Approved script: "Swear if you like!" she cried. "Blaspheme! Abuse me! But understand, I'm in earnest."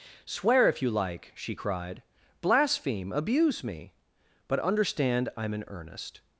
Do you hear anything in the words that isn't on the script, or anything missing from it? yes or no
no